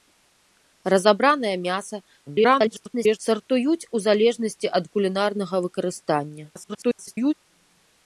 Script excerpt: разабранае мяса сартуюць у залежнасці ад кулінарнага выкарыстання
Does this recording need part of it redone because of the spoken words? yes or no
yes